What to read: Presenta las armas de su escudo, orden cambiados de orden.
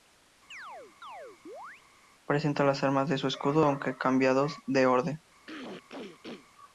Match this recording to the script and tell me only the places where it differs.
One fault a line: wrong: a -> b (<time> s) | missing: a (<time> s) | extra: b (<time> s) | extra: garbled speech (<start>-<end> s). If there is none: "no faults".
wrong: orden -> aunque (3.6 s)